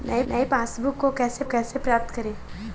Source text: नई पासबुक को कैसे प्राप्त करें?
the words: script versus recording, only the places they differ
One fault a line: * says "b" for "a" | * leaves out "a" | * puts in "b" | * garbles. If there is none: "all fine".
* puts in "नई"
* puts in "कैसे"